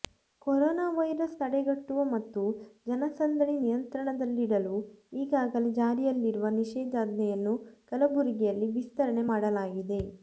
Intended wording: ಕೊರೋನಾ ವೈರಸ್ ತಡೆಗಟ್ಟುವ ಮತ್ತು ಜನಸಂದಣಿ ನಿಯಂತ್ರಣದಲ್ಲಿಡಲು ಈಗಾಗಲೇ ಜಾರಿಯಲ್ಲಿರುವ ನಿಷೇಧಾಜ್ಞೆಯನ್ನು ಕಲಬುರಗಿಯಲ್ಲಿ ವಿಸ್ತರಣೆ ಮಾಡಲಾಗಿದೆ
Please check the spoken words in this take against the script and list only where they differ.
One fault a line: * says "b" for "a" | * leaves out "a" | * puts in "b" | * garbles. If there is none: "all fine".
all fine